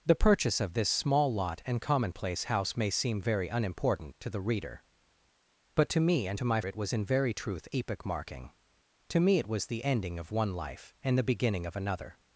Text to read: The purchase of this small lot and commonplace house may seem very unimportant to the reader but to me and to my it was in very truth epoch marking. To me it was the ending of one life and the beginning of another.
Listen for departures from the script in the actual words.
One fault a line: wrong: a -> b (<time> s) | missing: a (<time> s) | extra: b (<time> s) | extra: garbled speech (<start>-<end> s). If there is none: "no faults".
no faults